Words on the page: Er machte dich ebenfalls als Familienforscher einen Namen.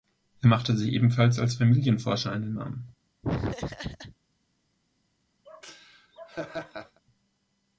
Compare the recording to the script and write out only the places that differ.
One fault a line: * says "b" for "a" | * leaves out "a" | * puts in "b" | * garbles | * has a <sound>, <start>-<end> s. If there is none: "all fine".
* says "sich" for "dich"
* has a laugh, 3.2-4.2 s
* has a laugh, 5.5-7.0 s